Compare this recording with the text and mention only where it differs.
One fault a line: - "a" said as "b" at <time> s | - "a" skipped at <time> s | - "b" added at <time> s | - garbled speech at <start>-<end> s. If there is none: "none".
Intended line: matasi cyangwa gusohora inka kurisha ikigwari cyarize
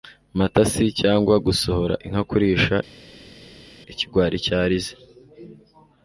none